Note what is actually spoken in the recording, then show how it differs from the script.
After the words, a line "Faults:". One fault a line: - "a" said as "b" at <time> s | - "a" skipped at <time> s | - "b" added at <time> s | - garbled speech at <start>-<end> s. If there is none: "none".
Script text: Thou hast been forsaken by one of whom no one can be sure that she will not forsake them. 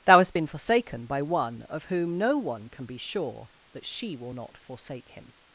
Thou hast been forsaken by one of whom no one can be sure that she will not forsake him.
Faults:
- "them" said as "him" at 5.1 s